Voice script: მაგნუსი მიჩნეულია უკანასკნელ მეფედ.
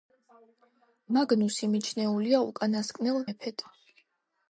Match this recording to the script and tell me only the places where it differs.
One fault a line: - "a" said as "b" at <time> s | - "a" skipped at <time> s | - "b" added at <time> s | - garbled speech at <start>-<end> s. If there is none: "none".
none